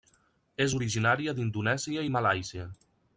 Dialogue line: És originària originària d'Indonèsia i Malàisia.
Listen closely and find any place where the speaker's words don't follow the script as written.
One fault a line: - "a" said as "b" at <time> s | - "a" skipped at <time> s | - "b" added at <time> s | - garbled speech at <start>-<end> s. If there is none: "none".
- "originària" skipped at 1.3 s